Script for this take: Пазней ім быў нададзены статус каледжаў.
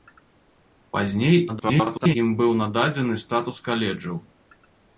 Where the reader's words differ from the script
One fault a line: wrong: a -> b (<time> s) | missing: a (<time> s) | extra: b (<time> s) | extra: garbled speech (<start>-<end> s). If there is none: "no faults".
extra: garbled speech (1.5-2.2 s)